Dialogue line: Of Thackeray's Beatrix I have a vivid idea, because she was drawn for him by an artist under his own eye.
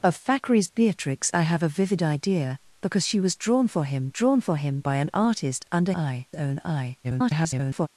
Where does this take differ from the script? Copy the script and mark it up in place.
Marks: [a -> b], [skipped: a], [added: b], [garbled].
Of Thackeray's Beatrix I have a vivid idea, because she was drawn for him [added: drawn for him] by an artist under [his -> eye] own eye. [garbled]